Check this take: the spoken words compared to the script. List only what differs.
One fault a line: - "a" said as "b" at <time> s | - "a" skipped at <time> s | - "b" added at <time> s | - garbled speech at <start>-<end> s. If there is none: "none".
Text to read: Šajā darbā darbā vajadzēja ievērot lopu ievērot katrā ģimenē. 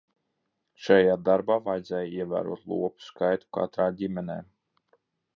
- "darbā" skipped at 1.6 s
- "ievērot" said as "skaitu" at 3.1 s